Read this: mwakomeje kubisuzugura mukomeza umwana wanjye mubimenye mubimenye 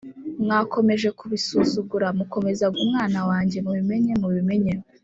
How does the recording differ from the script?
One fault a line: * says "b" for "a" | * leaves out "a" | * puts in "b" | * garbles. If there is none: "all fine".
all fine